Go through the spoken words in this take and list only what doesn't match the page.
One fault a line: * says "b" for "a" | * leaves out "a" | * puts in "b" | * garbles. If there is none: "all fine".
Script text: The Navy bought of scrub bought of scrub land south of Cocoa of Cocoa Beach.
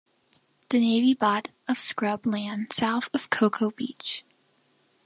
* leaves out "bought of scrub"
* leaves out "of Cocoa"